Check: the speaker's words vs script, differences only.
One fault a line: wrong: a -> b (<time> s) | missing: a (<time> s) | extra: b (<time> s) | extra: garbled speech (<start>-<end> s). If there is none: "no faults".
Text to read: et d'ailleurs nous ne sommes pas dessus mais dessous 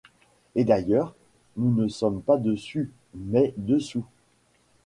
no faults